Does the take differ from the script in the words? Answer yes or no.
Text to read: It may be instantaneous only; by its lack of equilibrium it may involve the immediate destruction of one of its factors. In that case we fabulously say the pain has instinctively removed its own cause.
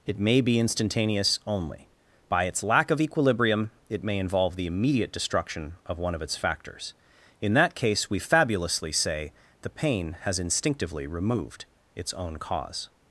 no